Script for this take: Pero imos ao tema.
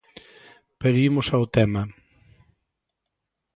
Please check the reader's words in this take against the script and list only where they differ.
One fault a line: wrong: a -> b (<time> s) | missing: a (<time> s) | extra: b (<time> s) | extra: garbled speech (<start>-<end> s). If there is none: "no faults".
no faults